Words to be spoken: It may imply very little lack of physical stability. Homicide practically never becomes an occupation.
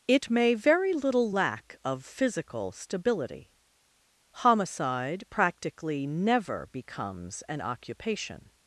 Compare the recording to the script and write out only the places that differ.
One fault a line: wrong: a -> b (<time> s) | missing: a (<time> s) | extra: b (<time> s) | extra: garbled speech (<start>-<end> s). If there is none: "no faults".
missing: imply (0.6 s)